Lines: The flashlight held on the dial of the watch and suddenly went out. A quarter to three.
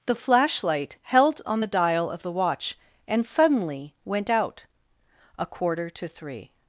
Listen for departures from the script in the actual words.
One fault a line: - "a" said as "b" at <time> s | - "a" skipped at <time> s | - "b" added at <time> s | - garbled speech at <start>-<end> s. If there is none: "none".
none